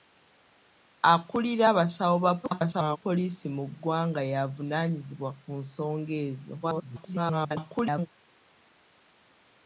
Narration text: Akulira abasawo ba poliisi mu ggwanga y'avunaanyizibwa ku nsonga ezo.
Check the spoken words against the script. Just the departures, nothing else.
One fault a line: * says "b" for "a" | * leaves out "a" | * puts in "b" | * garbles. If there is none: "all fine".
* garbles
* garbles